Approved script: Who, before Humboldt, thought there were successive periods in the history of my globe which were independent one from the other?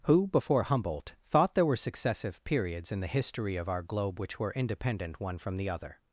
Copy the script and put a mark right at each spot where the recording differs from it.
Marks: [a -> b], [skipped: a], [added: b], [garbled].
Who, before Humboldt, thought there were successive periods in the history of [my -> our] globe which were independent one from the other?